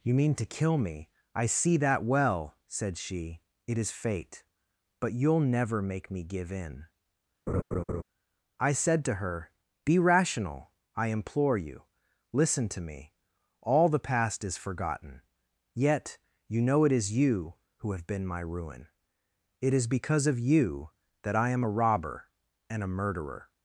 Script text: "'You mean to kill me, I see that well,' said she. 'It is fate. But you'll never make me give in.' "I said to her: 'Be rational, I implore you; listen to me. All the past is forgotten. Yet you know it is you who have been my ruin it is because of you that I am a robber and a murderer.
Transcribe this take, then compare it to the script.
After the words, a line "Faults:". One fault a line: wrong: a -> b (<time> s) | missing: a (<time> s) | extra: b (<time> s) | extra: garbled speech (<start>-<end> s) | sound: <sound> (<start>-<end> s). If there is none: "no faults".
"'You mean to kill me, I see that well,' said she. 'It is fate. But you'll never make me give in.' "I said to her: 'Be rational, I implore you; listen to me. All the past is forgotten. Yet you know it is you who have been my ruin it is because of you that I am a robber and a murderer.
Faults:
sound: laugh (7.5-8.0 s)